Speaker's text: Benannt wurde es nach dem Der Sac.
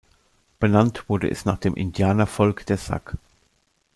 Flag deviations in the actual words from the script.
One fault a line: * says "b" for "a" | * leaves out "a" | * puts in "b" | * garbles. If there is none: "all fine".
* puts in "Indianervolk"